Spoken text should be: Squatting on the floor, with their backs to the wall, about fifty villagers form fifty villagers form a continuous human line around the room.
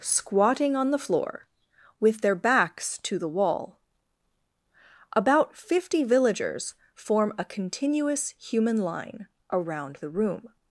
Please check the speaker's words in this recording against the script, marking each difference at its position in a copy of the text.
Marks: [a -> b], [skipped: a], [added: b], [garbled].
Squatting on the floor, with their backs to the wall, about fifty villagers form [skipped: fifty villagers form] a continuous human line around the room.